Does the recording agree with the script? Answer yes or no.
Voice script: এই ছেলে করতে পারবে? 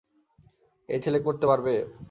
yes